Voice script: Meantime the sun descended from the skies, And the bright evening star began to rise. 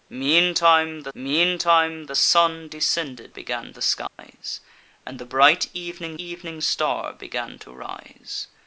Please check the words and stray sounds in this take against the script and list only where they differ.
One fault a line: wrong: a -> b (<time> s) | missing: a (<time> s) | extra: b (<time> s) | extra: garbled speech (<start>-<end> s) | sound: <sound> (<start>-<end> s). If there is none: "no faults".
extra: meantime the (1.1 s)
wrong: from -> began (3.3 s)
sound: dropout (4.1-4.2 s)
extra: evening (6.2 s)